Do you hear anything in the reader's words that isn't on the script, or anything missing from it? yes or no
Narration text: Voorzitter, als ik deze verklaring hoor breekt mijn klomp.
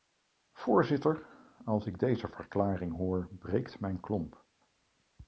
no